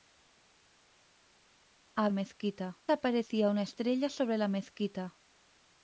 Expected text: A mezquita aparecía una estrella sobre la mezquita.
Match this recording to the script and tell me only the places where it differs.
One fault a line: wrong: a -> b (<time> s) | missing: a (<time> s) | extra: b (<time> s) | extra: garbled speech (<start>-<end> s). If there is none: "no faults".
no faults